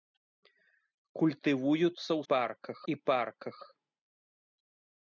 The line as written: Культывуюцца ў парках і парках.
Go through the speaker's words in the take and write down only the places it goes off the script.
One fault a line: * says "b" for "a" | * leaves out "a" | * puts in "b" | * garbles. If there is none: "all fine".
all fine